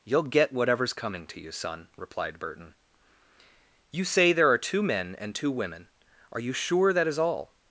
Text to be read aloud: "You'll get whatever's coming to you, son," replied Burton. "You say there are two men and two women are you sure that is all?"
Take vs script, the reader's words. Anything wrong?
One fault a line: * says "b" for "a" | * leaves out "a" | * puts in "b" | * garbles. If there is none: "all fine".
all fine